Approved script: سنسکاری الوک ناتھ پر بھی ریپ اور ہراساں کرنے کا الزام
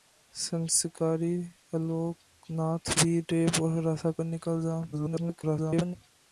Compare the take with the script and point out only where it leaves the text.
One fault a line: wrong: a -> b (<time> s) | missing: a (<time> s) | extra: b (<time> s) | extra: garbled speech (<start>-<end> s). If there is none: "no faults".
missing: پر (2.9 s)
extra: garbled speech (4.9-6.0 s)